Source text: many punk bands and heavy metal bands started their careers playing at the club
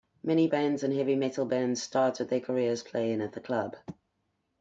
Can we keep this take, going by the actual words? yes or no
no